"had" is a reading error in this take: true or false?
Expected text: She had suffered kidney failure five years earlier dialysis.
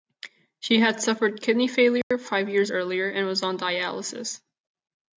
false